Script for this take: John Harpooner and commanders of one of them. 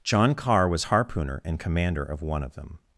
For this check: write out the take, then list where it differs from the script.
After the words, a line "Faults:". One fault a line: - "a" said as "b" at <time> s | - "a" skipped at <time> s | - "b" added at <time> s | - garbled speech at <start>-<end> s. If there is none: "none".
John Carr was harpooner and commander of one of them.
Faults:
- "Carr was" added at 0.3 s
- "commanders" said as "commander" at 1.6 s